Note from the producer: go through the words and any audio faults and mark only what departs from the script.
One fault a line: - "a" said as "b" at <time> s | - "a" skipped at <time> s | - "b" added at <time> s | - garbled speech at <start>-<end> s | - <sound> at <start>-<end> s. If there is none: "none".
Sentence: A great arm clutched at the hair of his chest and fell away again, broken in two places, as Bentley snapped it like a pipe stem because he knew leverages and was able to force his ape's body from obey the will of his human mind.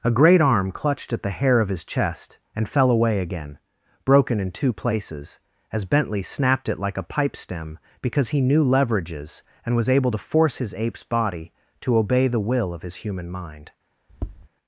- "from" said as "to" at 11.8 s
- tap at 14.1-14.5 s